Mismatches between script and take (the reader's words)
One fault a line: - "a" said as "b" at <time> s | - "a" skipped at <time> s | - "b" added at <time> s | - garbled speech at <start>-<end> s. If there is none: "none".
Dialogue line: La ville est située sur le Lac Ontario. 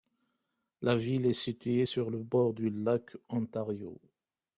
- "bord du" added at 2.2 s